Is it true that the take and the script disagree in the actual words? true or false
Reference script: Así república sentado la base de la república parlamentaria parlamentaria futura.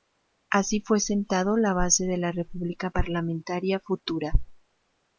true